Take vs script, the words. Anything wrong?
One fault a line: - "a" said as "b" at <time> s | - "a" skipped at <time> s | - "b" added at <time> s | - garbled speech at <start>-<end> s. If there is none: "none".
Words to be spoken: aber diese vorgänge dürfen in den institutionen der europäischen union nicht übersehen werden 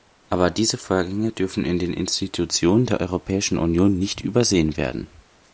none